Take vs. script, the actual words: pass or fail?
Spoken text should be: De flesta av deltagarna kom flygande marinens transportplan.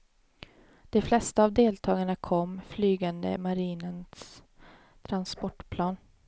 pass